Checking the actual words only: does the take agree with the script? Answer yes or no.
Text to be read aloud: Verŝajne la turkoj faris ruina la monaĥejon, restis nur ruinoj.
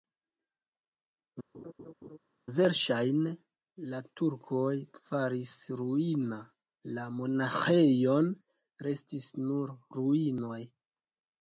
yes